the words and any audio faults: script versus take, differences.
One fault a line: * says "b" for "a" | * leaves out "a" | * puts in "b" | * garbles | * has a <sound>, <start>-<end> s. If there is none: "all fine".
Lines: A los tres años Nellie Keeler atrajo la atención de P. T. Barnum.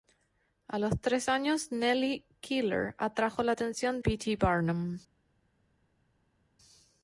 * leaves out "de"